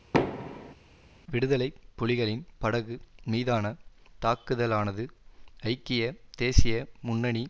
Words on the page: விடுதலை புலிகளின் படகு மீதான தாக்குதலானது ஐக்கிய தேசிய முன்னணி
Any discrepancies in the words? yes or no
no